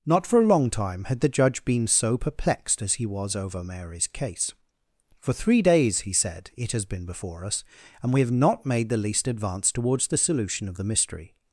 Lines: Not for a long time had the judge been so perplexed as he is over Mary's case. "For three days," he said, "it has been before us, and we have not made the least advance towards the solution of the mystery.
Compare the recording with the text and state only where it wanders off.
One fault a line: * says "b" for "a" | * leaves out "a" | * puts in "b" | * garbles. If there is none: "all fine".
* says "was" for "is"